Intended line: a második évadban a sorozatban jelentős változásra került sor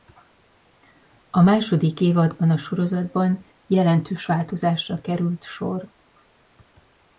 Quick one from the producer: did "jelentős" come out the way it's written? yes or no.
yes